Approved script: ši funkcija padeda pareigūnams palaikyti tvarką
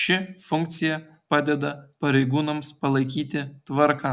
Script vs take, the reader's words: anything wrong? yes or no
no